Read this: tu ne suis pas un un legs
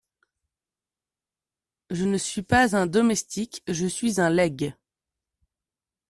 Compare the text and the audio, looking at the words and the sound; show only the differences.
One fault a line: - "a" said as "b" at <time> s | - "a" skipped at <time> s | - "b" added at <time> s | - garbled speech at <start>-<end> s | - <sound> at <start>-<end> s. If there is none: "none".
- "tu" said as "je" at 1.9 s
- "domestique je suis" added at 2.9 s